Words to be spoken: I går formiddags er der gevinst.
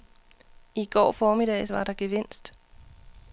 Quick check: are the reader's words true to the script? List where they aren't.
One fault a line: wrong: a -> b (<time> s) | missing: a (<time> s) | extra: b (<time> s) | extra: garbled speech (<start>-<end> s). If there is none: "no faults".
wrong: er -> var (1.7 s)